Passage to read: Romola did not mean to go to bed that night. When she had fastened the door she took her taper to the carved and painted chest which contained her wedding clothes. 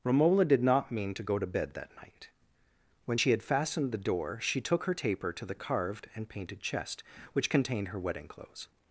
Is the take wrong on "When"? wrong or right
right